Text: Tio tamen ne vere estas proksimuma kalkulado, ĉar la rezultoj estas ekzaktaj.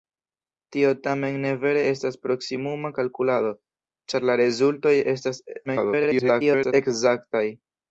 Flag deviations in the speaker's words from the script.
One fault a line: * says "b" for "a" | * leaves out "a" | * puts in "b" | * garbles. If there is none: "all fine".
* garbles